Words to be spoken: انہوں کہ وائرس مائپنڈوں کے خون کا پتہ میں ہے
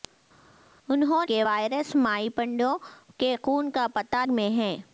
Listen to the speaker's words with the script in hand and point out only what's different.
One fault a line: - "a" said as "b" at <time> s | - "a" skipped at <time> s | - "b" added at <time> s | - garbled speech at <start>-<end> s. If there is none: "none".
none